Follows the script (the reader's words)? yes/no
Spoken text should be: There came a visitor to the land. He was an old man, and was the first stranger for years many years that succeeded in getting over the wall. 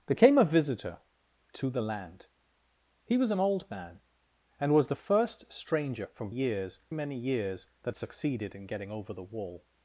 yes